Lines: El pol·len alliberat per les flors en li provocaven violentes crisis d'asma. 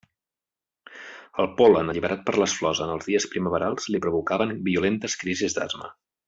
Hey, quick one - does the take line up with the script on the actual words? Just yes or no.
no